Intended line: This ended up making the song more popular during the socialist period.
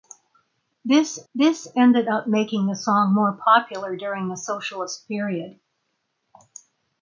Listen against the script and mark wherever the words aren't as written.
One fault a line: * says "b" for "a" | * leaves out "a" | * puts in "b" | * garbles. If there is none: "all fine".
* puts in "this"